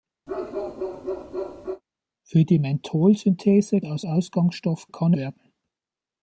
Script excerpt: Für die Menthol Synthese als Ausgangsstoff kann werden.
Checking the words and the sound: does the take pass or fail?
fail